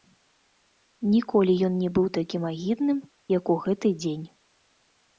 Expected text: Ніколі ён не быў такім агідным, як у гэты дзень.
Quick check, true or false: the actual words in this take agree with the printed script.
true